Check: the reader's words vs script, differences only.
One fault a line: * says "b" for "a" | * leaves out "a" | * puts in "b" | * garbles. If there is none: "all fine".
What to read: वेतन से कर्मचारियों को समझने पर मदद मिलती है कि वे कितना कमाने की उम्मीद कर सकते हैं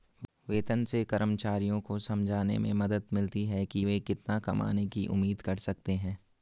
* says "में" for "पर"